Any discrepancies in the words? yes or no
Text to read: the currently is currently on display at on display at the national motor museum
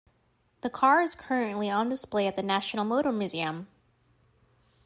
yes